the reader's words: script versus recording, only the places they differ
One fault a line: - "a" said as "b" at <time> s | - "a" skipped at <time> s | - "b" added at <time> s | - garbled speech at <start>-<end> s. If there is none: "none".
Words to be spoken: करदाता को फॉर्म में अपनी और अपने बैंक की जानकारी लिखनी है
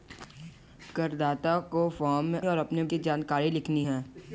- "अपनी" skipped at 2.4 s
- "बैंक" skipped at 2.8 s